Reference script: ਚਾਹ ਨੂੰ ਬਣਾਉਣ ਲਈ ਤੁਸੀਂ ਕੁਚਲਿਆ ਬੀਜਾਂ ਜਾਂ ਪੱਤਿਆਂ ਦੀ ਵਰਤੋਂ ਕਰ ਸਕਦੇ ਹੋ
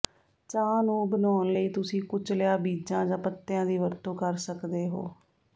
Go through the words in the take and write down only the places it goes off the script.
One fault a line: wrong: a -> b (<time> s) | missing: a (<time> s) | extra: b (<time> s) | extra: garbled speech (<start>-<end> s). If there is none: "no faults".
no faults